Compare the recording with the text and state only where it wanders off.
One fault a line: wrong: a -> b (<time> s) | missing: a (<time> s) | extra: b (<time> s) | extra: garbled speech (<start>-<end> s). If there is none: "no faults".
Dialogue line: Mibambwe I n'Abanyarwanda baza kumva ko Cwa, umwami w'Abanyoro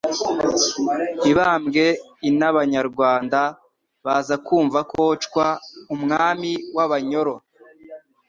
no faults